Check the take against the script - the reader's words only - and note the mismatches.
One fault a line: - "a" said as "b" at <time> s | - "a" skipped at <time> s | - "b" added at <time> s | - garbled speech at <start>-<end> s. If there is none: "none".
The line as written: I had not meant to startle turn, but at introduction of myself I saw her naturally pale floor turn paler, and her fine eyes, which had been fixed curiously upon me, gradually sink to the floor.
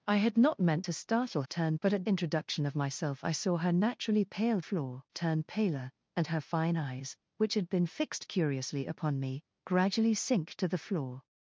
none